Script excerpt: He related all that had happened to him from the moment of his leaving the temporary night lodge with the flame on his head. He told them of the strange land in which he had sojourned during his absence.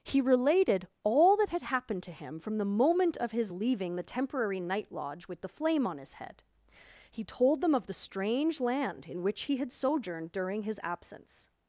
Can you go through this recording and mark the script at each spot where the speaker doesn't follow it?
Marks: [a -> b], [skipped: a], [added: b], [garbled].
He related all that had happened to him from the moment of his leaving the temporary night lodge with the flame on his head. He told them of the strange land in which he had sojourned during his absence.